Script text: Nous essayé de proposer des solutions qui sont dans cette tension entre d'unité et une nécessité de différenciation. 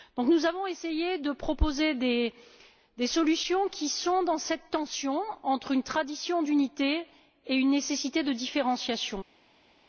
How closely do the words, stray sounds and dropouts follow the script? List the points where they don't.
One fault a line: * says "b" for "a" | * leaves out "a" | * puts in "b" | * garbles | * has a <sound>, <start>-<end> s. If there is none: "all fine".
* puts in "avons"
* puts in "une tradition"